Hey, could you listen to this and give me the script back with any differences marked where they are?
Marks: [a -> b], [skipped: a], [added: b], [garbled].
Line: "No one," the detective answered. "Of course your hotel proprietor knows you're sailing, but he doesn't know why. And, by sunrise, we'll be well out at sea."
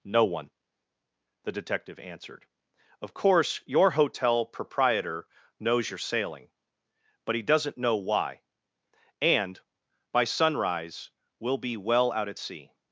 "No one," the detective answered. "Of course your hotel proprietor knows you're sailing, but he doesn't know why. And, by sunrise, we'll be well out at sea."